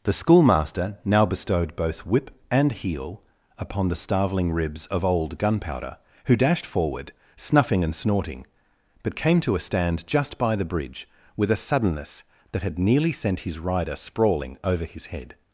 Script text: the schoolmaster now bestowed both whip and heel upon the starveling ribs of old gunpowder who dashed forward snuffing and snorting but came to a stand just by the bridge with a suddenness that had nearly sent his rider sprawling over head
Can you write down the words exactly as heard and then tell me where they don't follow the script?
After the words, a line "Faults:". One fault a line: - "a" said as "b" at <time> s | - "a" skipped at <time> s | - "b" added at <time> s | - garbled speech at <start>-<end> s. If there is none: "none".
the schoolmaster now bestowed both whip and heel upon the starveling ribs of old gunpowder who dashed forward snuffing and snorting but came to a stand just by the bridge with a suddenness that had nearly sent his rider sprawling over his head
Faults:
- "his" added at 14.9 s